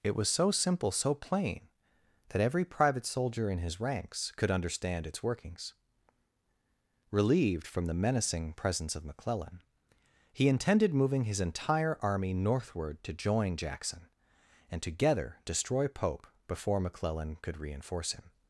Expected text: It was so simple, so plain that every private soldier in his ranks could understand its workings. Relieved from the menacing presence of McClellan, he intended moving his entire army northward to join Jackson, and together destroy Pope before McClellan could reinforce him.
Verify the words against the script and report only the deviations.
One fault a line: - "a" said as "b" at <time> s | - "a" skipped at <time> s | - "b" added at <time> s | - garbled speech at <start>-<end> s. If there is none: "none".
none